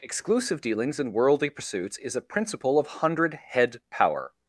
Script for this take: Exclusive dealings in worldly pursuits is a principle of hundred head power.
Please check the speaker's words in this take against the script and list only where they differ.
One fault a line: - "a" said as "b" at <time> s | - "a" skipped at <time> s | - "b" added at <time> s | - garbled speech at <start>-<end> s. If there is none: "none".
none